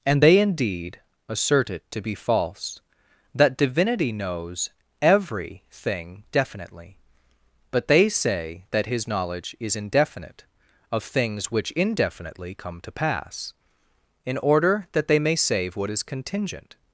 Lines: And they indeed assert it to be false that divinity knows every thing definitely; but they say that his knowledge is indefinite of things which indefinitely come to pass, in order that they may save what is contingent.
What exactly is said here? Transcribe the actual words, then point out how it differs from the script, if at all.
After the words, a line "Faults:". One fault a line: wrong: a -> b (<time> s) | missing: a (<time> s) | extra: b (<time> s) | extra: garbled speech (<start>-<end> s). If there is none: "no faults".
And they indeed assert it to be false that divinity knows every thing definitely; but they say that his knowledge is indefinite of things which indefinitely come to pass, in order that they may save what is contingent.
Faults:
no faults